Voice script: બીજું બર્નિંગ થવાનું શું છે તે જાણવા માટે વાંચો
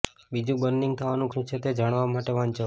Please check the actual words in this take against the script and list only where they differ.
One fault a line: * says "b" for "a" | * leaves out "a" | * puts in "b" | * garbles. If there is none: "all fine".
all fine